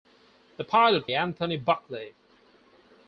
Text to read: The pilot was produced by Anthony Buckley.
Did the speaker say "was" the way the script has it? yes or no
no